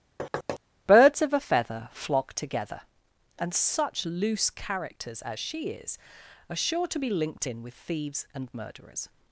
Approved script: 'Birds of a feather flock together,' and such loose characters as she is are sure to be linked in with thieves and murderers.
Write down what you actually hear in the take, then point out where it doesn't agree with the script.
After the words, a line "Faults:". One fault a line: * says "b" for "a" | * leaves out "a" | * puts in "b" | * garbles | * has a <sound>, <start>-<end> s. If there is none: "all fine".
'Birds of a feather flock together,' and such loose characters as she is are sure to be linked in with thieves and murderers.
Faults:
* has a thud, 0.2-0.6 s